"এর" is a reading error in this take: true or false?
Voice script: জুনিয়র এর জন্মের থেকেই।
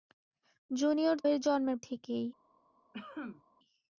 false